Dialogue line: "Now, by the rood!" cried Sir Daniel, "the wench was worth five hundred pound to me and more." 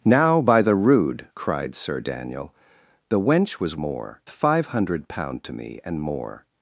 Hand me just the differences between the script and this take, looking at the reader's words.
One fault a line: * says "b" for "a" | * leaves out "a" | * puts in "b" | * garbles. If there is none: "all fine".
* says "more" for "worth"